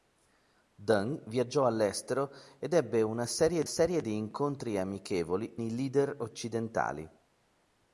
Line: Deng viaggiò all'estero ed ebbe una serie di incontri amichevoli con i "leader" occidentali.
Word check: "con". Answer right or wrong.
wrong